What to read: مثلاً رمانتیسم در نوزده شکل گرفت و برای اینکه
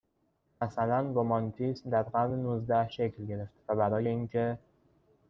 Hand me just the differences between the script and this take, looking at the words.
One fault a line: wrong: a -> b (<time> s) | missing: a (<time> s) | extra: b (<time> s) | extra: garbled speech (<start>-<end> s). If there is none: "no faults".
extra: قرن (2.0 s)